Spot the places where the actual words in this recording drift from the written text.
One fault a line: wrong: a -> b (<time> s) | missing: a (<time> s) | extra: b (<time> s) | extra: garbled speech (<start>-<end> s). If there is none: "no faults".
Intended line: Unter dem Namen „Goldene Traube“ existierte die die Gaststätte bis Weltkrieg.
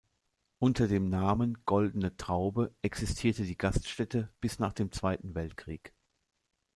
missing: die (3.5 s)
extra: nach dem Zweiten (4.6 s)